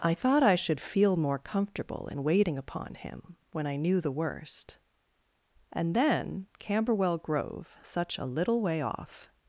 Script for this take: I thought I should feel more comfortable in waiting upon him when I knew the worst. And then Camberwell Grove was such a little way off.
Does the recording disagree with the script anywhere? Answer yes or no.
yes